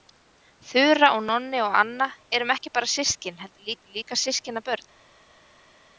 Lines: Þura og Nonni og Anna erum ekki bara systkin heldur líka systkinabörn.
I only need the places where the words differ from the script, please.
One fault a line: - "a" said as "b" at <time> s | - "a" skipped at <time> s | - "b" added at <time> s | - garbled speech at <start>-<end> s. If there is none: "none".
- "heldur" added at 3.7 s